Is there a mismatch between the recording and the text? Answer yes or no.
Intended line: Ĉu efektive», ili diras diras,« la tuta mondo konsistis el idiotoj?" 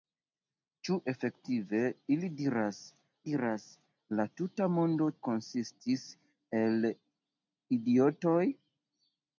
no